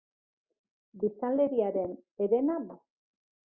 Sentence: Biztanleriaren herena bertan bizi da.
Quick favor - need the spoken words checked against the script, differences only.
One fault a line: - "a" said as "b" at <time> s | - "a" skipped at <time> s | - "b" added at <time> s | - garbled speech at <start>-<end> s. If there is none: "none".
- "bertan bizi" skipped at 2.6 s